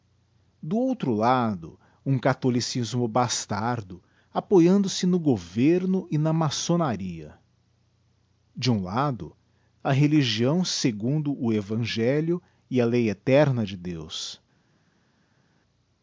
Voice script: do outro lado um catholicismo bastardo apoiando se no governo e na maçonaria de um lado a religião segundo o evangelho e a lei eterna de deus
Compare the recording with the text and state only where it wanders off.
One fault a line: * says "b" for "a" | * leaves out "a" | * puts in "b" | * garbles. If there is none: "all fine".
all fine